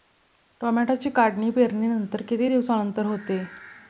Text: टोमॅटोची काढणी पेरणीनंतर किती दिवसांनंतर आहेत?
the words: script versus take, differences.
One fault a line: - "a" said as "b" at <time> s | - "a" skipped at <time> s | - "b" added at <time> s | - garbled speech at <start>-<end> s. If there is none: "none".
- "आहेत" said as "होते" at 3.0 s